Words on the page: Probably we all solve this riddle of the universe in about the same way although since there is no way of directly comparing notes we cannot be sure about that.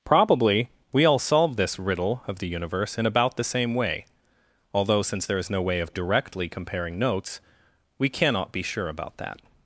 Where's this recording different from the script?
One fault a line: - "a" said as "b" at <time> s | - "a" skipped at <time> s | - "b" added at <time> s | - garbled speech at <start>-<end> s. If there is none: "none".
none